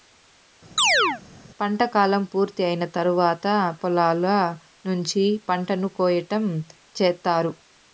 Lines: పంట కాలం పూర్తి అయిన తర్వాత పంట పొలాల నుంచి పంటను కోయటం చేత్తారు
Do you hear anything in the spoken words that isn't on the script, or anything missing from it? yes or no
yes